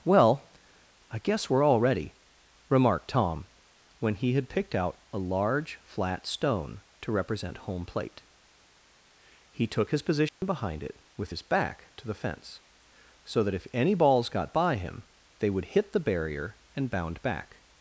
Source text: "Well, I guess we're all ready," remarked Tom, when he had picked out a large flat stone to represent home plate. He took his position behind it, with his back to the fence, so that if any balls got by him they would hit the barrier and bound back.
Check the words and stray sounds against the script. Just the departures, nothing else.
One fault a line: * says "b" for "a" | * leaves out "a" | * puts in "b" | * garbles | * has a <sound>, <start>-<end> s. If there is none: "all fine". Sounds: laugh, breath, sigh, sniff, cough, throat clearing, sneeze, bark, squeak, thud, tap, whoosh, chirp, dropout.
* has a dropout, 10.3-10.4 s